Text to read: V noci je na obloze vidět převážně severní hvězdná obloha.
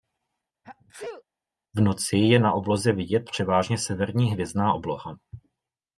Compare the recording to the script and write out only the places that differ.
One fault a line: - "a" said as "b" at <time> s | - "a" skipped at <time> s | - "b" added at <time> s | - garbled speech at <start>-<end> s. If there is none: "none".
none